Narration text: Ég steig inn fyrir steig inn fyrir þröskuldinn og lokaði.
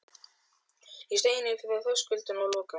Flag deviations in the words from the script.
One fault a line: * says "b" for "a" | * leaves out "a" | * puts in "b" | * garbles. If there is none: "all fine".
* leaves out "steig inn fyrir"